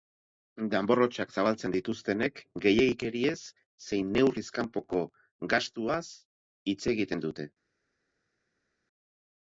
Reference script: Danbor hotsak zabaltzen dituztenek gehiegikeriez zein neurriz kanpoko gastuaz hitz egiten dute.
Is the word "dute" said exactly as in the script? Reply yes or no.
yes